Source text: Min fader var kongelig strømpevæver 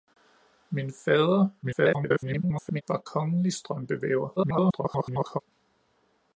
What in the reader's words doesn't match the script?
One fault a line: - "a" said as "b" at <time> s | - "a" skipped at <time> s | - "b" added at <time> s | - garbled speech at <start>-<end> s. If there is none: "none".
- garbled speech at 1.6-2.8 s
- garbled speech at 4.4-5.4 s